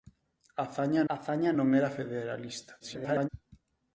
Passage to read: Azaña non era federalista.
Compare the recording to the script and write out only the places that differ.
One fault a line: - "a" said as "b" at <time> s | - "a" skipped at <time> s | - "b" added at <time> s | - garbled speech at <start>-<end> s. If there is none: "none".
- "azaña" added at 1.1 s
- garbled speech at 2.8-3.3 s